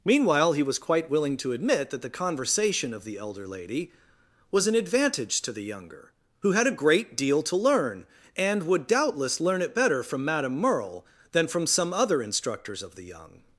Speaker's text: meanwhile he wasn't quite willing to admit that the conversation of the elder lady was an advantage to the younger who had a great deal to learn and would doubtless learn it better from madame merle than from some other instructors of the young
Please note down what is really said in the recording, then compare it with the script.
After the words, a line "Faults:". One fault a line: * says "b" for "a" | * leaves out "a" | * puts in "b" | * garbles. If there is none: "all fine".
meanwhile he was quite willing to admit that the conversation of the elder lady was an advantage to the younger who had a great deal to learn and would doubtless learn it better from madame merle than from some other instructors of the young
Faults:
* says "was" for "wasn't"